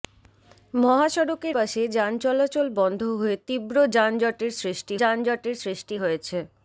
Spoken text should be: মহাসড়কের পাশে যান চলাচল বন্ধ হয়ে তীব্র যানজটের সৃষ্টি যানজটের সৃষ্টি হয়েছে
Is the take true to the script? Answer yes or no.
yes